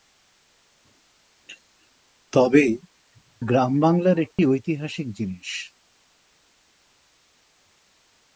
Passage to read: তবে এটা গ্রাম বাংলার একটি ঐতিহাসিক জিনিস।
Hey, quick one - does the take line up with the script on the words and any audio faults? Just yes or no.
no